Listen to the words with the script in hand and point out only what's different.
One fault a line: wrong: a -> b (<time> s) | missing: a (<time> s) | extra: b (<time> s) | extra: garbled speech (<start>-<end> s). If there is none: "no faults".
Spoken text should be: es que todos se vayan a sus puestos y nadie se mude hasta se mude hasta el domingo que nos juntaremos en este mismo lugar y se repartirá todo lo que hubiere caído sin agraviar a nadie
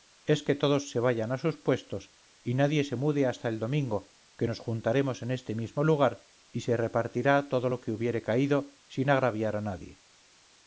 missing: se mude hasta (3.5 s)